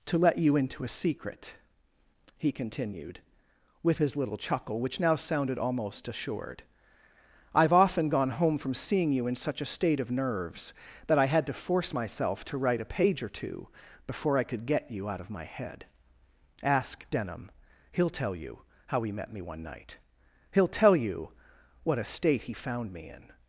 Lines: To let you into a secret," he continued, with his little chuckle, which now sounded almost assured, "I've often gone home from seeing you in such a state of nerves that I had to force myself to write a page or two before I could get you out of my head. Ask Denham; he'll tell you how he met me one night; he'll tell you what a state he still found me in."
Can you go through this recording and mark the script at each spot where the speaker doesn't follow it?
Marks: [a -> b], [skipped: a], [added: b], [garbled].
To let you into a secret," he continued, with his little chuckle, which now sounded almost assured, "I've often gone home from seeing you in such a state of nerves that I had to force myself to write a page or two before I could get you out of my head. Ask Denham; he'll tell you how he met me one night; he'll tell you what a state he [skipped: still] found me in."